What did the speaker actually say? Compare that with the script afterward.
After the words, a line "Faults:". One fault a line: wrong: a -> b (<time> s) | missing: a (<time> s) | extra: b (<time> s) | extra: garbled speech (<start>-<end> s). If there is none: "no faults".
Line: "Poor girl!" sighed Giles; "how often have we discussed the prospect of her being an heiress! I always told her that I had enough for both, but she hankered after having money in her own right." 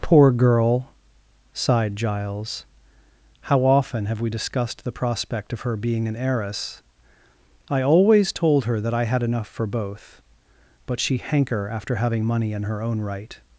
"Poor girl!" sighed Giles; "how often have we discussed the prospect of her being an heiress! I always told her that I had enough for both, but she hanker after having money in her own right."
Faults:
wrong: hankered -> hanker (11.2 s)